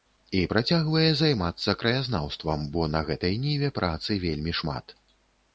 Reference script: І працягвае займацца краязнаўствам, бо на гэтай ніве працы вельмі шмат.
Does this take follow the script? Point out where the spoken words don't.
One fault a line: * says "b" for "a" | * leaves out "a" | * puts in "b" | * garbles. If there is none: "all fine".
all fine